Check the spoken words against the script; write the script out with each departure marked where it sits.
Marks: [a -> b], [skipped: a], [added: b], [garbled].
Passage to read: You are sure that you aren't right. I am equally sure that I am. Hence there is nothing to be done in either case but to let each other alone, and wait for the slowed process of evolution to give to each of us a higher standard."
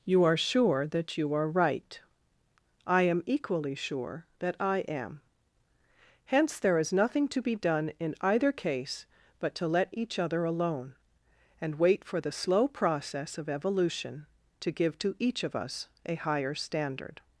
You are sure that you [aren't -> are] right. I am equally sure that I am. Hence there is nothing to be done in either case but to let each other alone, and wait for the [slowed -> slow] process of evolution to give to each of us a higher standard."